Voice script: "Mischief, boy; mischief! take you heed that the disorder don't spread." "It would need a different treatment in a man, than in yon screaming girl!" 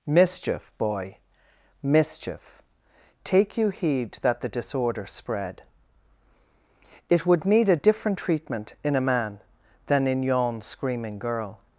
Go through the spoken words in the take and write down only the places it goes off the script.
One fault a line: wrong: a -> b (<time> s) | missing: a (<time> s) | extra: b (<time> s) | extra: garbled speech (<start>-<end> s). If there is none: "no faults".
missing: don't (5.1 s)